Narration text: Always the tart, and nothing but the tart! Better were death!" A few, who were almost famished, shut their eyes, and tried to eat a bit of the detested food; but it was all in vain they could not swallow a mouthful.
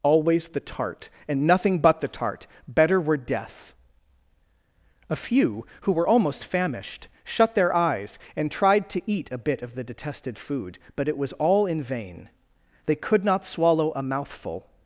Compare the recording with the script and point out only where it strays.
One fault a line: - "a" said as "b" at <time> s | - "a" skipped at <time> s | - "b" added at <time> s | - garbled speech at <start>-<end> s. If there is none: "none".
none